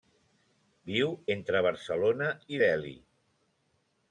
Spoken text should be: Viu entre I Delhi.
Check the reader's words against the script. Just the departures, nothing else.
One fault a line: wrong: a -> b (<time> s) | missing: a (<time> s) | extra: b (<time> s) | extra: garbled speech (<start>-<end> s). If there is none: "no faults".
extra: Barcelona (1.7 s)